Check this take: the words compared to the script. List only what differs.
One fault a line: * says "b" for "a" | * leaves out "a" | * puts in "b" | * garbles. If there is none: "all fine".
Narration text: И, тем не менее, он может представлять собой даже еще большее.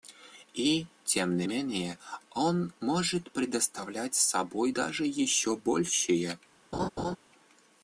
all fine